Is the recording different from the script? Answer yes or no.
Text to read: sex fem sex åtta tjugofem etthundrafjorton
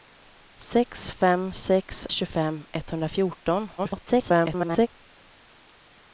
yes